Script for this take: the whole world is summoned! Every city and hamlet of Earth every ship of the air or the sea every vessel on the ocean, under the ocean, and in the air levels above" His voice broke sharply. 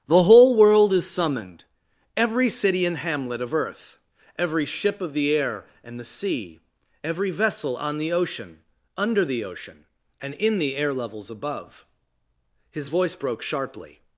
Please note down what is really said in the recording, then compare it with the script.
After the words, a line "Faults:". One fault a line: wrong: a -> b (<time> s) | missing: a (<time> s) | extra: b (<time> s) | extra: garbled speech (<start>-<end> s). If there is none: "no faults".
the whole world is summoned! Every city and hamlet of Earth every ship of the air and the sea every vessel on the ocean, under the ocean, and in the air levels above" His voice broke sharply.
Faults:
wrong: or -> and (5.8 s)